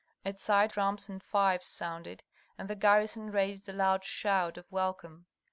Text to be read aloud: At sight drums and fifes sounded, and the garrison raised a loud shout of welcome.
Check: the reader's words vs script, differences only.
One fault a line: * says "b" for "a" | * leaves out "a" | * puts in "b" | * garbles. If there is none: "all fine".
all fine